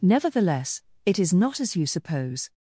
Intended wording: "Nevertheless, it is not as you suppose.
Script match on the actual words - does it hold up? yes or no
yes